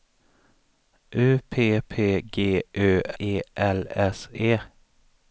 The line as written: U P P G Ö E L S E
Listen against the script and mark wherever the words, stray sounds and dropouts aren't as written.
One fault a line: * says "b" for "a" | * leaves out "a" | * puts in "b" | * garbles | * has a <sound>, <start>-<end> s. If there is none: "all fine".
all fine